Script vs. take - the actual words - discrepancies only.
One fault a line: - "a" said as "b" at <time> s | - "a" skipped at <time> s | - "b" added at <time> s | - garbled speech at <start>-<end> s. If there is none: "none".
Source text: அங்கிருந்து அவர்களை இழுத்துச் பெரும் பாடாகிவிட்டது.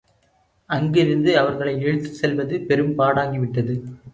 - "செல்வது" added at 2.2 s